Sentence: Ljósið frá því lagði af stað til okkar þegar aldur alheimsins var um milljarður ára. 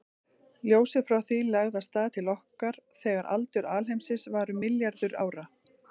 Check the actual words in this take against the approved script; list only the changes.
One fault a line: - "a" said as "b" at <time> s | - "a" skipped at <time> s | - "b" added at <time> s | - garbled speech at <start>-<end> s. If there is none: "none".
none